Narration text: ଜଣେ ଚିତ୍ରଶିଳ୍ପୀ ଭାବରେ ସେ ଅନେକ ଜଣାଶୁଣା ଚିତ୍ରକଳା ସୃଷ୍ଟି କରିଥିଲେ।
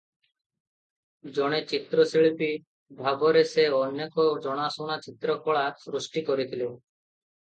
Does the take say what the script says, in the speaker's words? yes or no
yes